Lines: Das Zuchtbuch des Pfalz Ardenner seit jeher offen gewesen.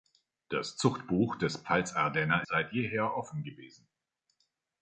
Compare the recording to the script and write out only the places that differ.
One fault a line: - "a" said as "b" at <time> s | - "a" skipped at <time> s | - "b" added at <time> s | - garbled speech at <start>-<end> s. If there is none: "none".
none